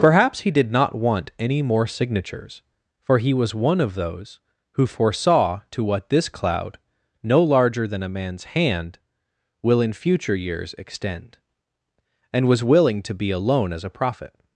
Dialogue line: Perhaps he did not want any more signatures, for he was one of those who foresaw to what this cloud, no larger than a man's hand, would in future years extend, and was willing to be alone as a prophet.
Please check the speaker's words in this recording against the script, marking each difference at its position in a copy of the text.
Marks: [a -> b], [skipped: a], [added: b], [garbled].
Perhaps he did not want any more signatures, for he was one of those who foresaw to what this cloud, no larger than a man's hand, [would -> will] in future years extend, and was willing to be alone as a prophet.